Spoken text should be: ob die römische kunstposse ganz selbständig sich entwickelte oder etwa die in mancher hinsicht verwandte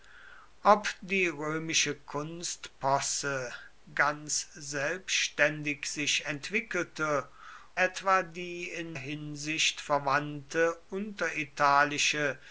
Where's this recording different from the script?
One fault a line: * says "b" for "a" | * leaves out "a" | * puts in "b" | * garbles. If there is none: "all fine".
* leaves out "oder"
* leaves out "mancher"